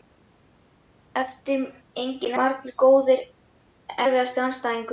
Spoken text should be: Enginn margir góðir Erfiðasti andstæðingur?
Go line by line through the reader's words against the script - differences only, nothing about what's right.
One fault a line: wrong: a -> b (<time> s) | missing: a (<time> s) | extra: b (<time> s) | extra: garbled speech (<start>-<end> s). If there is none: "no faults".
no faults